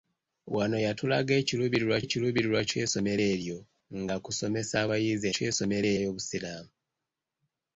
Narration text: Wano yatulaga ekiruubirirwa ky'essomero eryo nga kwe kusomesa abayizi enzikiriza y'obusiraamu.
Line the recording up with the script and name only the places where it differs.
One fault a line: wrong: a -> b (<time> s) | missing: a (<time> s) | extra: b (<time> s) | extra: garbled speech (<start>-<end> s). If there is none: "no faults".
extra: ekiruubirirwa (2.0 s)
missing: kwe (4.2 s)
wrong: enzikiriza -> ky'essomero (5.3 s)